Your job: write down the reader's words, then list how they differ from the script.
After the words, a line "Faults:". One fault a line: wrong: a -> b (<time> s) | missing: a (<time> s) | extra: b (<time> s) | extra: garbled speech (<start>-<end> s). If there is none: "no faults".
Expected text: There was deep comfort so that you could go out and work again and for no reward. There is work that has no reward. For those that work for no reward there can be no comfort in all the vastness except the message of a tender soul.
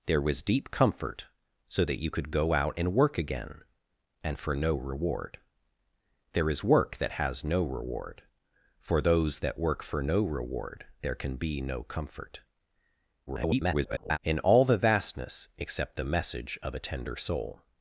There was deep comfort so that you could go out and work again and for no reward. There is work that has no reward. For those that work for no reward there can be no comfort [garbled] in all the vastness except the message of a tender soul.
Faults:
extra: garbled speech (13.3-14.2 s)